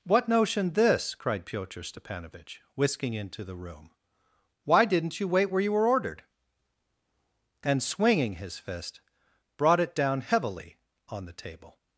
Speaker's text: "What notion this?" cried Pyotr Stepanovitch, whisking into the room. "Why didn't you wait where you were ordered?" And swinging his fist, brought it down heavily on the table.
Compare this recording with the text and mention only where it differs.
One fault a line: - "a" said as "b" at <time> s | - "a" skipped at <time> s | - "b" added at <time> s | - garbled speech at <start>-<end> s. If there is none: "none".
none